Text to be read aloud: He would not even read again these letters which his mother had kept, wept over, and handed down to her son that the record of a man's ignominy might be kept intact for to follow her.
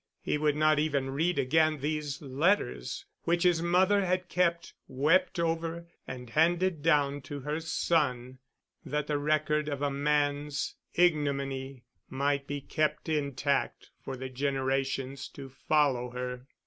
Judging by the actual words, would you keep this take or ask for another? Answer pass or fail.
fail